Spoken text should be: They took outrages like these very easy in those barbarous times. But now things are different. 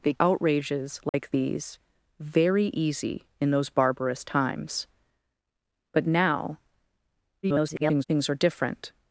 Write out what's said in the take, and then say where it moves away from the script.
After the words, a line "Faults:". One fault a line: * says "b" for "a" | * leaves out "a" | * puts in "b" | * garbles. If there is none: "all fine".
They outrages like these very easy in those barbarous times. But now [garbled] things are different.
Faults:
* leaves out "took"
* garbles